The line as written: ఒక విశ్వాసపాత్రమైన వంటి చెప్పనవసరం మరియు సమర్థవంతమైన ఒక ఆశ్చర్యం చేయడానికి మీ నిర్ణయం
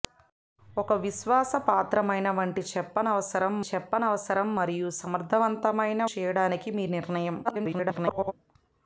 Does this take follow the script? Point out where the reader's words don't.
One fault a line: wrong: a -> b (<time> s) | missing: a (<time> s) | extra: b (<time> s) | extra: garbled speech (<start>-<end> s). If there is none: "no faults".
extra: చెప్పనవసరం (3.7 s)
missing: ఒక ఆశ్చర్యం (6.0 s)
extra: garbled speech (7.4-8.3 s)